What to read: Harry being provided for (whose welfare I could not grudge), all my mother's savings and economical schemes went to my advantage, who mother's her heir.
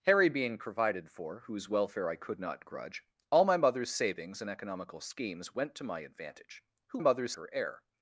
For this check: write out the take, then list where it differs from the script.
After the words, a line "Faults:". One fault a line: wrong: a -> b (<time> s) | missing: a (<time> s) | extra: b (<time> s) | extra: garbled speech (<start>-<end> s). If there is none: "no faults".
Harry being provided for (whose welfare I could not grudge), all my mother's savings and economical schemes went to my advantage, who mother's her heir.
Faults:
no faults